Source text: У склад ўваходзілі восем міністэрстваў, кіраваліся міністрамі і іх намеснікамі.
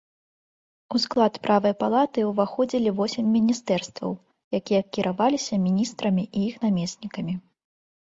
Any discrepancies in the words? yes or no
yes